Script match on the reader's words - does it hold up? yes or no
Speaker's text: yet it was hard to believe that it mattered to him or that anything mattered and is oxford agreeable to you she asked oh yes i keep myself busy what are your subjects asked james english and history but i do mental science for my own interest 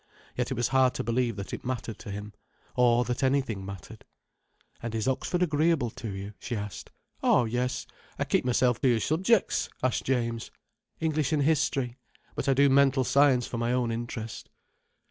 no